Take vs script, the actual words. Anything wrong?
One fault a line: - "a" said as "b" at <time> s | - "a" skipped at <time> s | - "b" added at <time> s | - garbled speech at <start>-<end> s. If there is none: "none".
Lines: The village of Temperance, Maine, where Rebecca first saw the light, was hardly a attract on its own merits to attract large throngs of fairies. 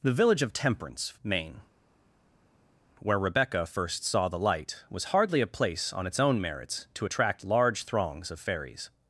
- "attract" said as "place" at 5.5 s